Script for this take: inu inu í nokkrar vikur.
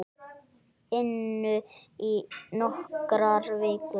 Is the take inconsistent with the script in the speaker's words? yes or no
yes